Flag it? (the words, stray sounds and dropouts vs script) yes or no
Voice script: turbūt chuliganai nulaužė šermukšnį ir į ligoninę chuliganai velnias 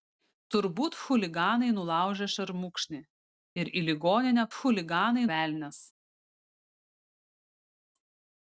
no